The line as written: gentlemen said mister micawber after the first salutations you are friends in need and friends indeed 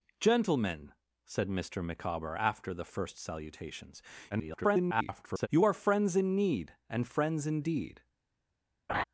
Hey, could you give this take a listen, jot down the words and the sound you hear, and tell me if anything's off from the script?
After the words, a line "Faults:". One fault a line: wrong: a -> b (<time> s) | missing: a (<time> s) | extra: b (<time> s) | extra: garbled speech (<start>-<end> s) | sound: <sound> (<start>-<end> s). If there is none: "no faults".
gentlemen said mister micawber after the first salutations [garbled] you are friends in need and friends indeed
Faults:
extra: garbled speech (4.3-5.5 s)
sound: laugh (8.9-9.0 s)